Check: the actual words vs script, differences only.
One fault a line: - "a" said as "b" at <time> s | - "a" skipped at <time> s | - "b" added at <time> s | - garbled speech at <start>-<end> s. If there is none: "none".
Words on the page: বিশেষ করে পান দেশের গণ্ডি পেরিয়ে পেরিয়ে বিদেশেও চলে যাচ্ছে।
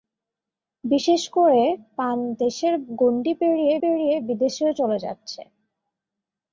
none